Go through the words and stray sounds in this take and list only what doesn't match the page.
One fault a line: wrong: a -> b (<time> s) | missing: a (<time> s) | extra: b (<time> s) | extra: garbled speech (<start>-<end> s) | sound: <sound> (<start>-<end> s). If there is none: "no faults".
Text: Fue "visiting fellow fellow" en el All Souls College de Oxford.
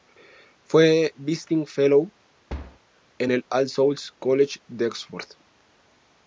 missing: fellow (2.1 s)
sound: thud (2.5-2.8 s)